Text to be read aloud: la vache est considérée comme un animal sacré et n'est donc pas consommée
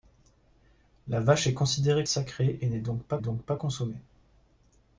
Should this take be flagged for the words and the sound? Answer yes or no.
yes